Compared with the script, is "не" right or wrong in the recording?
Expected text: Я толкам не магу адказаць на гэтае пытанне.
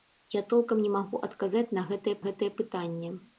right